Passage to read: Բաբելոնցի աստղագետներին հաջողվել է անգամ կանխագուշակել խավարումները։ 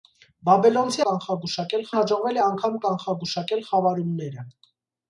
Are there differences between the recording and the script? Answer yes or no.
yes